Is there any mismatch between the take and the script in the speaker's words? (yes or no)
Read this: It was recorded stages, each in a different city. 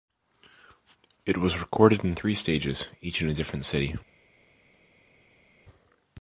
yes